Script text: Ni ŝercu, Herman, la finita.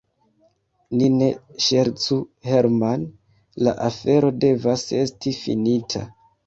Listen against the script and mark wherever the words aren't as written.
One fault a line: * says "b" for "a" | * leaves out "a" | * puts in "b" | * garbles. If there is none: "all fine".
* puts in "ne"
* puts in "afero devas esti"